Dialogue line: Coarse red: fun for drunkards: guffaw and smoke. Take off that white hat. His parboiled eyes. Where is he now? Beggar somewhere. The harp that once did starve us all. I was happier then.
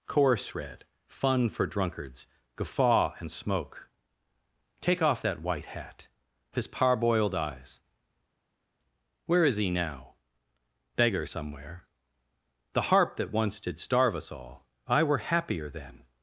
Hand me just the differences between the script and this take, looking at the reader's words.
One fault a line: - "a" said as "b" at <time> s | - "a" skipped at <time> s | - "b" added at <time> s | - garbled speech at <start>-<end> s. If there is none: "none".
- "was" said as "were" at 15.0 s